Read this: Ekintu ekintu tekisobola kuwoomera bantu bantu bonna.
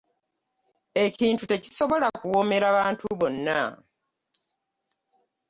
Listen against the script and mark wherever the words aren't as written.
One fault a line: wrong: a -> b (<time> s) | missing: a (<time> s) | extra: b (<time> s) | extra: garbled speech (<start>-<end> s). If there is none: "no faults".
missing: ekintu (1.4 s)
missing: bantu (3.0 s)